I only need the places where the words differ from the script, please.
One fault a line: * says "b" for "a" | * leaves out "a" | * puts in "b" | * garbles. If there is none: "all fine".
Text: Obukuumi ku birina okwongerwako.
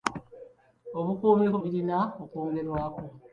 all fine